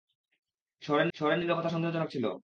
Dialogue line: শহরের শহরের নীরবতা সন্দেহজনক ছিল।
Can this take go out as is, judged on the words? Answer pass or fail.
pass